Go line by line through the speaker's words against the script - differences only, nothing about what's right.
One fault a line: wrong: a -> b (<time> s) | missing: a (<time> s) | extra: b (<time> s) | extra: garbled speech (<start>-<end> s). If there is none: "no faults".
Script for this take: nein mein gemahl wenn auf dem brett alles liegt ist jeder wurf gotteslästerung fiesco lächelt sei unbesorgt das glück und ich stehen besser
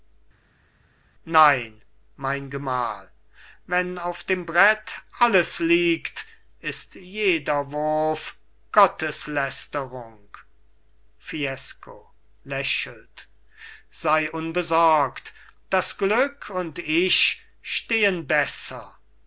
no faults